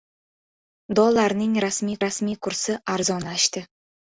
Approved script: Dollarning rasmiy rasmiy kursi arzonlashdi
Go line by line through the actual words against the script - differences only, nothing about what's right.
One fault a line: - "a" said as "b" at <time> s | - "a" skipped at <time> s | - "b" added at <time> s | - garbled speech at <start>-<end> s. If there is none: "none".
none